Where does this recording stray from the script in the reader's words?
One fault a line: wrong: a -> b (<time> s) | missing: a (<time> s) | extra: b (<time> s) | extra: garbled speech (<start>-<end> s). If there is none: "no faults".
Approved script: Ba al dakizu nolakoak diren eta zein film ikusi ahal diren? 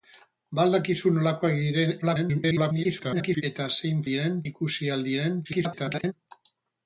extra: garbled speech (2.0-3.4 s)
wrong: film -> diren (4.1 s)
extra: garbled speech (5.4-6.1 s)